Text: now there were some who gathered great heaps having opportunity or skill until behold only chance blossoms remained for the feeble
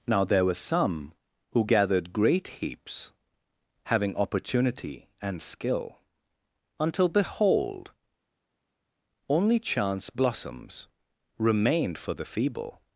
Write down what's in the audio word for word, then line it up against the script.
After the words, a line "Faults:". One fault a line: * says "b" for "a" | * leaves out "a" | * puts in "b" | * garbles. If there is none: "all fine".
now there were some who gathered great heaps having opportunity and skill until behold only chance blossoms remained for the feeble
Faults:
* says "and" for "or"